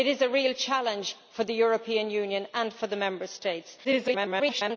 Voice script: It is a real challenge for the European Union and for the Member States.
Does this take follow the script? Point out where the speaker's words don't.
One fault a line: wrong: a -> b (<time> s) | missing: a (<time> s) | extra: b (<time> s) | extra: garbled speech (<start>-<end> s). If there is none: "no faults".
extra: garbled speech (3.8-4.8 s)